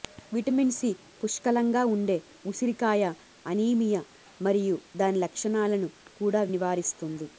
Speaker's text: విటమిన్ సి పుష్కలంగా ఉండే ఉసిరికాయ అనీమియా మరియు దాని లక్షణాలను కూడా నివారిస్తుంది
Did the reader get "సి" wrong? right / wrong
right